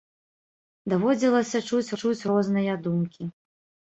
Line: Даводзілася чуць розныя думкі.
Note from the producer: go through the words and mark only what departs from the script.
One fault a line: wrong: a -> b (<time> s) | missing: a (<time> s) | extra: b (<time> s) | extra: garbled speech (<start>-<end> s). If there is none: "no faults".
extra: чуць (2.0 s)